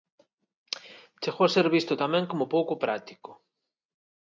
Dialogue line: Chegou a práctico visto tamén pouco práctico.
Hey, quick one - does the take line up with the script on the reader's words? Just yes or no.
no